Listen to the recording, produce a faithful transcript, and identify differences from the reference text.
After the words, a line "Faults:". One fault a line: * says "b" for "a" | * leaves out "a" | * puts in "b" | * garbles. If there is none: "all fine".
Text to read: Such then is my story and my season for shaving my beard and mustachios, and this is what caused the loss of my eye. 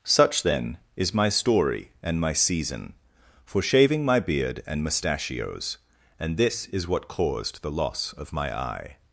Such then is my story and my season for shaving my beard and mustachios, and this is what caused the loss of my eye.
Faults:
all fine